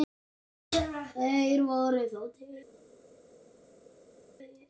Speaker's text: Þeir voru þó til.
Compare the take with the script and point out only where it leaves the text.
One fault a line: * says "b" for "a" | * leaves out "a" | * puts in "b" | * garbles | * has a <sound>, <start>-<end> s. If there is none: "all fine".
all fine